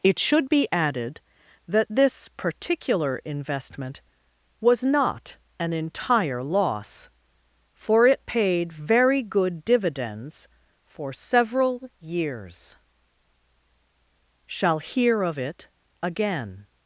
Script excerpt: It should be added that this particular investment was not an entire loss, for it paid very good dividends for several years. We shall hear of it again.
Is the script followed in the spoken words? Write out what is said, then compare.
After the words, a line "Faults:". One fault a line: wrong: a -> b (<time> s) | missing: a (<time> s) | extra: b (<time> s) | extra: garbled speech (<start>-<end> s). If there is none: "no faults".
It should be added that this particular investment was not an entire loss, for it paid very good dividends for several years. shall hear of it again.
Faults:
missing: We (12.8 s)